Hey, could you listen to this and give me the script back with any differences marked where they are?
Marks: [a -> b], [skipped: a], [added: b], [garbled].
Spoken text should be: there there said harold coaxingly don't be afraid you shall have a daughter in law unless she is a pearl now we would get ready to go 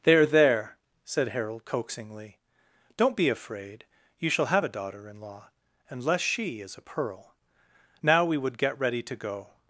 there there said harold coaxingly don't be afraid you shall have a daughter in law unless she is a pearl now we would get ready to go